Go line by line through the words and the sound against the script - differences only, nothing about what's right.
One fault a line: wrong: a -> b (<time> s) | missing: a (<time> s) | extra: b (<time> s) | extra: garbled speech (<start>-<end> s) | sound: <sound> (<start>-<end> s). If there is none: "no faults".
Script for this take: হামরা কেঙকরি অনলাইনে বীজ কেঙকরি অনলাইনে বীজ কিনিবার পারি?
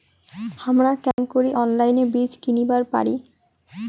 sound: dropout (1.1-1.2 s)
missing: কেঙকরি অনলাইনে বীজ (2.3 s)